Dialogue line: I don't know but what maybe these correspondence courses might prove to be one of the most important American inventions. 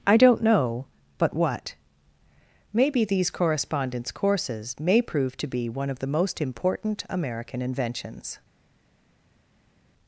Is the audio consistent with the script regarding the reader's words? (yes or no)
no